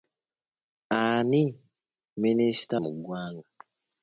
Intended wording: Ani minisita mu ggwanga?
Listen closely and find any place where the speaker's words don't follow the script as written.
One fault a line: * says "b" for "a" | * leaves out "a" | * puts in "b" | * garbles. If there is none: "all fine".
all fine